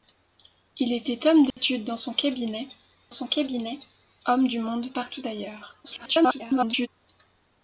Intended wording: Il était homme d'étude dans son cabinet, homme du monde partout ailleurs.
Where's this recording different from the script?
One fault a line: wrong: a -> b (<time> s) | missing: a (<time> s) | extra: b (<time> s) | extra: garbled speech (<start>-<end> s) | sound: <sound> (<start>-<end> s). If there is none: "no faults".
sound: dropout (1.5-1.6 s)
extra: son cabinet (3.1 s)
extra: garbled speech (5.8-6.9 s)